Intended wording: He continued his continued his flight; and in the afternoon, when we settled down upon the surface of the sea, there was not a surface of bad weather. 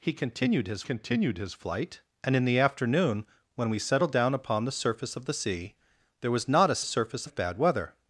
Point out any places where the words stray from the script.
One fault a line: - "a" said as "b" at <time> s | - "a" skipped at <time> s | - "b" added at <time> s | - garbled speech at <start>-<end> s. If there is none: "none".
none